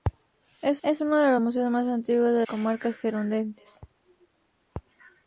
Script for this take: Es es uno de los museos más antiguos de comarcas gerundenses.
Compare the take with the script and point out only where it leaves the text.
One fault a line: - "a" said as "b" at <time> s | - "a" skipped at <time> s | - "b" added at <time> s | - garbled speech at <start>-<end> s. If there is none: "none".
none